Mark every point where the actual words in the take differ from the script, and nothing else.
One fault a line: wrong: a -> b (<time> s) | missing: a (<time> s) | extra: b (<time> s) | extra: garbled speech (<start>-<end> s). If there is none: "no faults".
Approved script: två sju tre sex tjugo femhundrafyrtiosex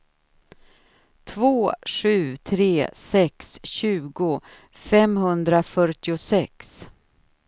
no faults